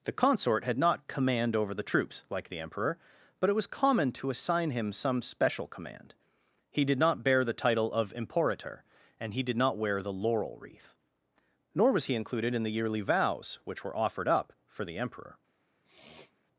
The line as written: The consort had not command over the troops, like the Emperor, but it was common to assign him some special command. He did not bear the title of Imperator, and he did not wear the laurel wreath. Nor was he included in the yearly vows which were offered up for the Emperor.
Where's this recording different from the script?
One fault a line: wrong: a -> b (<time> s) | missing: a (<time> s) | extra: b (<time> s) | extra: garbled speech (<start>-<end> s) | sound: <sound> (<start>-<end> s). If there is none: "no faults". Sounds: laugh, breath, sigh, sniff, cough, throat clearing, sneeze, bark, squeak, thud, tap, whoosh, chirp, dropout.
sound: sniff (15.8-16.4 s)